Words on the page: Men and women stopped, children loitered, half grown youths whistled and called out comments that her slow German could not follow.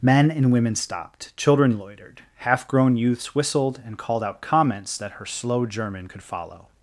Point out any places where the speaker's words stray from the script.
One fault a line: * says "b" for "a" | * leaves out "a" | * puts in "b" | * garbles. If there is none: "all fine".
* leaves out "not"